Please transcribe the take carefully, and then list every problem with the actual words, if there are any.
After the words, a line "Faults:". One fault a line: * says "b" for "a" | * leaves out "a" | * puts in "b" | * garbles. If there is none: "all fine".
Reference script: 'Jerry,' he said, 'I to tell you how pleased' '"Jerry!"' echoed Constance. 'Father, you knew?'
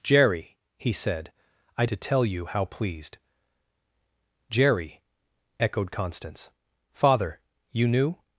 'Jerry,' he said, 'I to tell you how pleased' '"Jerry!"' echoed Constance. 'Father, you knew?'
Faults:
all fine